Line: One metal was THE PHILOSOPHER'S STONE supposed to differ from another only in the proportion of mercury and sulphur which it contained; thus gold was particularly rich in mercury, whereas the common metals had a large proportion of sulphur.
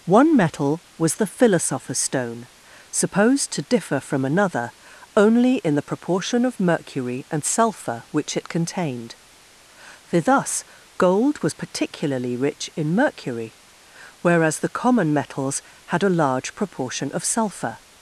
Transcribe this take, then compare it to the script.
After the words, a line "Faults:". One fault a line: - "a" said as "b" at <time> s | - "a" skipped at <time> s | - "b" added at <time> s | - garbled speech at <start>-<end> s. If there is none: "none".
One metal was THE PHILOSOPHER'S STONE supposed to differ from another only in the proportion of mercury and sulphur which it contained; for thus gold was particularly rich in mercury, whereas the common metals had a large proportion of sulphur.
Faults:
- "for" added at 10.0 s